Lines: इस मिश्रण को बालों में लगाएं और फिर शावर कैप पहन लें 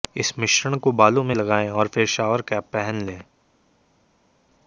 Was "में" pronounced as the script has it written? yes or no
yes